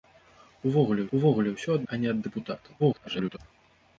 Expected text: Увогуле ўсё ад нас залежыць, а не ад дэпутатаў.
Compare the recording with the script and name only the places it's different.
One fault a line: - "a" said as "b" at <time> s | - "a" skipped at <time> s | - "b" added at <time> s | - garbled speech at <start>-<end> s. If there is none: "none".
- "увогуле" added at 1.2 s
- "нас залежыць" skipped at 1.9 s
- garbled speech at 2.8-3.4 s